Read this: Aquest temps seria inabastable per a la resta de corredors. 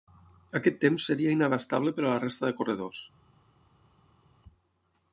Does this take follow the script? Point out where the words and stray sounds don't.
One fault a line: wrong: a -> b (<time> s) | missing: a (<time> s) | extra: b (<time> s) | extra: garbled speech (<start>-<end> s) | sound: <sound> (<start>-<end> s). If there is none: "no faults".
no faults